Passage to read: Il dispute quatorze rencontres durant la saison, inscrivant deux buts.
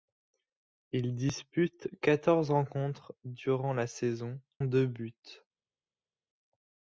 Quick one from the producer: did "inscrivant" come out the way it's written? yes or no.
no